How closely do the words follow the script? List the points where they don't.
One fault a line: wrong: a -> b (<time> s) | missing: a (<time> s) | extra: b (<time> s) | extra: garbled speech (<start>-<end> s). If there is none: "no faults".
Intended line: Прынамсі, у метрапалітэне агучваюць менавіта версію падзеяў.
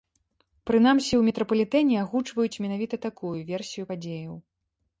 extra: такую (3.1 s)